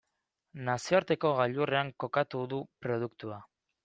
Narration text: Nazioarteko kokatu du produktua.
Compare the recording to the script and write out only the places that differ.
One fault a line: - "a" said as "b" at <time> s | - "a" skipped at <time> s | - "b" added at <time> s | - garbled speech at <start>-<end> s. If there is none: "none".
- "gailurrean" added at 1.4 s